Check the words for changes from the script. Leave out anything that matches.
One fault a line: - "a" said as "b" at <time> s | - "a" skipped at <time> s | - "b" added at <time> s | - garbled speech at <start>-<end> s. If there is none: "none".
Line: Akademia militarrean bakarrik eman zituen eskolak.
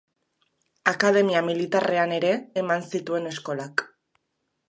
- "bakarrik" said as "ere" at 2.2 s